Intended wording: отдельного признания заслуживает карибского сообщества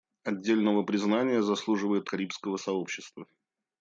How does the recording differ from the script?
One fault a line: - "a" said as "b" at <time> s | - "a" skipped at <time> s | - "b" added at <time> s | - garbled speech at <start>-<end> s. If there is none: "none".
none